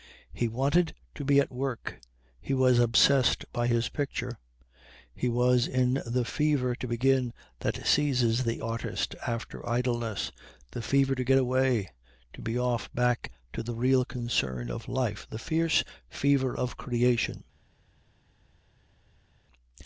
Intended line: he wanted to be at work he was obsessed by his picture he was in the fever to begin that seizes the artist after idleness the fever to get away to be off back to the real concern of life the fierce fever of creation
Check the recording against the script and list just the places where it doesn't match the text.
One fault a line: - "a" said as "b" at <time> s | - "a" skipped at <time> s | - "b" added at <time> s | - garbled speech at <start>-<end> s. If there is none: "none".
none